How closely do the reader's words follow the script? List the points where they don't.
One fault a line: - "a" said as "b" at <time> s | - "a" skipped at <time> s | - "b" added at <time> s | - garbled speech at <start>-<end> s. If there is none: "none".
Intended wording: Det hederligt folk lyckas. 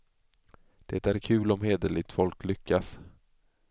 - "är kul om" added at 1.1 s